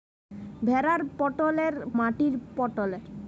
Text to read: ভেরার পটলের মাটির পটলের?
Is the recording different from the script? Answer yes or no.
no